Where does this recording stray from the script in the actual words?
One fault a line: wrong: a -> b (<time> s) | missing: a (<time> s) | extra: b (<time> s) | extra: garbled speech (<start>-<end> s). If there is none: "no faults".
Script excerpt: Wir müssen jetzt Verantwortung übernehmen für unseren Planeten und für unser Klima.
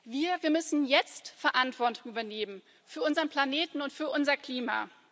no faults